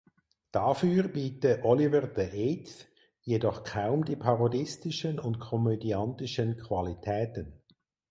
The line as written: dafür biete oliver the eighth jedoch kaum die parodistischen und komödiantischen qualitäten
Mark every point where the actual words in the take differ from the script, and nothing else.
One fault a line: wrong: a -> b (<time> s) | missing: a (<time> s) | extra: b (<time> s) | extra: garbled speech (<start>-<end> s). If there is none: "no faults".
no faults